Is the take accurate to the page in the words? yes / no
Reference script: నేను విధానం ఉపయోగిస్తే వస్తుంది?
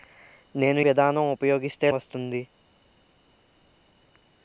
yes